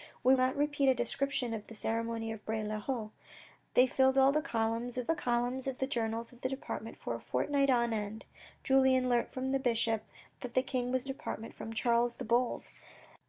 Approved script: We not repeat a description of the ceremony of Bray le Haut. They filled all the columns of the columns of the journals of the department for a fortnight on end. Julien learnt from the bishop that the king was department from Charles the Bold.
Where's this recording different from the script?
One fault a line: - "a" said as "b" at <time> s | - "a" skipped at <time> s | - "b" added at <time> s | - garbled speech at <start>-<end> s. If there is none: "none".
none